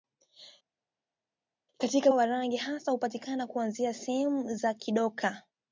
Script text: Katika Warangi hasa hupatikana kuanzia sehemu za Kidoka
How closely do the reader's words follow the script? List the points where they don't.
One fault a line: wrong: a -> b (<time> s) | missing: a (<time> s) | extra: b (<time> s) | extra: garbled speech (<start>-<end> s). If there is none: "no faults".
no faults